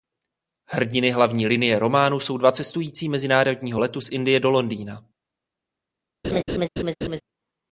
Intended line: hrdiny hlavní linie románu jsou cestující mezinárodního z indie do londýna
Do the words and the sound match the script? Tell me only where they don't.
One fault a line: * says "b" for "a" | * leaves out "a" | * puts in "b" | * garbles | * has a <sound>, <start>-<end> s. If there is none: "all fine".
* puts in "dva"
* puts in "letu"
* has a laugh, 6.2-7.2 s